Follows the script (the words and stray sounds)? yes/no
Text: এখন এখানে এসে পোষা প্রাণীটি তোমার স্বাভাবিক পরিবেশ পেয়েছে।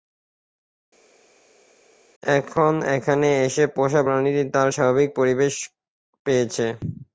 no